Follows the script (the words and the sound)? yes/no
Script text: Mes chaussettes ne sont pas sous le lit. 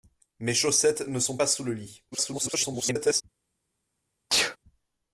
no